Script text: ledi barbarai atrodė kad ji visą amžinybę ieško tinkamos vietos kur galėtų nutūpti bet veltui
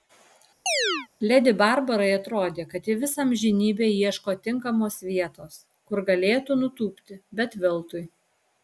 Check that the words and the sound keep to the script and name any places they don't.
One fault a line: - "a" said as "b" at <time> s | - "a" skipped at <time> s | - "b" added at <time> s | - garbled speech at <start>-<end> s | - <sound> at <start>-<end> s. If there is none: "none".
- chirp at 0.7-1.1 s